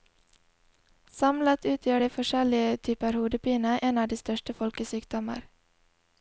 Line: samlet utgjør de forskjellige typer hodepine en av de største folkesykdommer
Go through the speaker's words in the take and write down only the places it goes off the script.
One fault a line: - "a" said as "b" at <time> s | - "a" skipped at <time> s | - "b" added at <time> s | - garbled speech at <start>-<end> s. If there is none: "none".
none